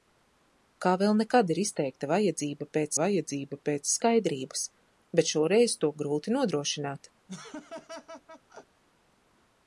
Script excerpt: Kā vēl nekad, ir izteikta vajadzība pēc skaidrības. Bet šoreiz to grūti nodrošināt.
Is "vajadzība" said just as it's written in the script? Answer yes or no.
yes